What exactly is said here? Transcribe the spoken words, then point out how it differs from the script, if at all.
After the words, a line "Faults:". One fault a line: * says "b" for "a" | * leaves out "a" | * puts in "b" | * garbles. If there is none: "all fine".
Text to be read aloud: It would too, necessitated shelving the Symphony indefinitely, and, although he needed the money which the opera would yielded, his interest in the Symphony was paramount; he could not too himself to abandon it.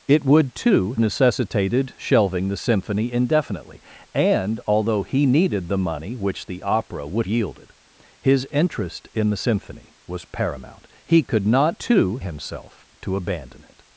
It would too, necessitated shelving the Symphony indefinitely, and, although he needed the money which the opera would yielded, his interest in the Symphony was paramount; he could not too himself to abandon it.
Faults:
all fine